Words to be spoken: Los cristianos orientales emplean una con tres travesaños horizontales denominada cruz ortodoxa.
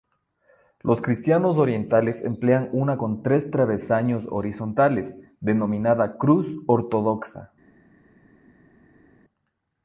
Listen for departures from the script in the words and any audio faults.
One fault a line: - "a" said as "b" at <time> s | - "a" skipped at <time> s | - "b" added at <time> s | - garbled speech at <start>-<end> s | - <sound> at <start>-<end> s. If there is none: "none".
none